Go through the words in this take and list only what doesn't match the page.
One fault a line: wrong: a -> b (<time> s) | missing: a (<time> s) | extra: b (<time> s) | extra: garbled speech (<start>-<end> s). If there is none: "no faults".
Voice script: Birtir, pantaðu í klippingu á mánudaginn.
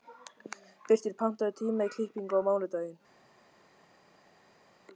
extra: tíma (1.6 s)